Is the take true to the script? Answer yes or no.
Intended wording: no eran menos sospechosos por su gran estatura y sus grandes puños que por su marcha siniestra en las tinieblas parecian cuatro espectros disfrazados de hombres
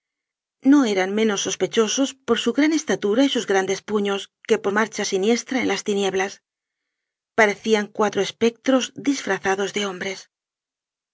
no